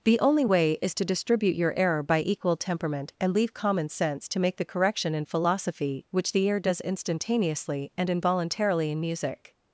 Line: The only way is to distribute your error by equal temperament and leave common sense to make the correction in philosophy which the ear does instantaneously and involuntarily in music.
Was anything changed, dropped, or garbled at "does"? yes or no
no